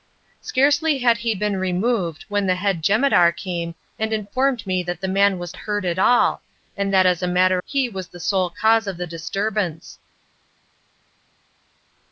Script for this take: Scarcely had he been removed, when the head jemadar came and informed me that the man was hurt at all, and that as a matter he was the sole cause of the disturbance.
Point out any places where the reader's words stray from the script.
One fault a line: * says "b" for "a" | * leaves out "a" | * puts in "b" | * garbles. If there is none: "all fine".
all fine